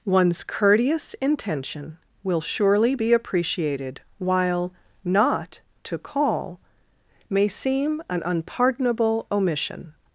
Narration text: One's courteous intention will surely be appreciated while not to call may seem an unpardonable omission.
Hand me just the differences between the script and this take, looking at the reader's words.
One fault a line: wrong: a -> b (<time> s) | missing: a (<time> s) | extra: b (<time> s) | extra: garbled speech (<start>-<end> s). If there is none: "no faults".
no faults